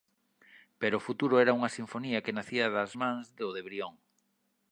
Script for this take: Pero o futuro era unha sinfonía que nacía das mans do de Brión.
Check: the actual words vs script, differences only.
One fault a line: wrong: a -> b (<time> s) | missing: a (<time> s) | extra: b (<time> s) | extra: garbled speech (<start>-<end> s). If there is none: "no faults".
no faults